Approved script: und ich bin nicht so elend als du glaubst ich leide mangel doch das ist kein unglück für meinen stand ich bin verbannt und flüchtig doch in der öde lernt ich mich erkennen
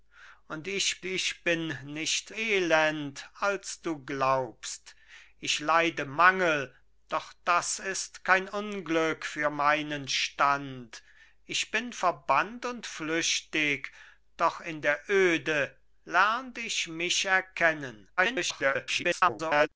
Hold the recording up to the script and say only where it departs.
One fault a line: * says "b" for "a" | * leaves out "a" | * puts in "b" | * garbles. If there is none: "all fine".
* puts in "ich"
* leaves out "so"
* garbles